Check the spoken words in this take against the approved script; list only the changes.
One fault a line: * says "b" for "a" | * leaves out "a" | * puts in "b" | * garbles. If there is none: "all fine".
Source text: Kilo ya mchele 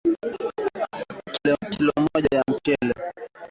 * puts in "moja"